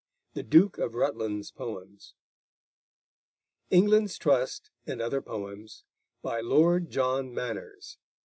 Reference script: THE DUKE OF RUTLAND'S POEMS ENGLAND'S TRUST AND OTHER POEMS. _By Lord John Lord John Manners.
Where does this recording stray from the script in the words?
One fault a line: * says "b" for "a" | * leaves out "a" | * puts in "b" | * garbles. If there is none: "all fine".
* leaves out "Lord John"